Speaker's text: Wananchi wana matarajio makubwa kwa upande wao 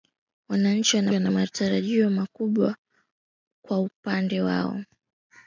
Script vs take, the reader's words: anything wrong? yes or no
yes